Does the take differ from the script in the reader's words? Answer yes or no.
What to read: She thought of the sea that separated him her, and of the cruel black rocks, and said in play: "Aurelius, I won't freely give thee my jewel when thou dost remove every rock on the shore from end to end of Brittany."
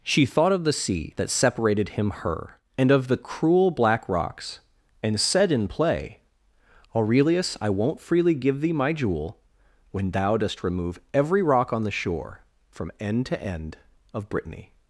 no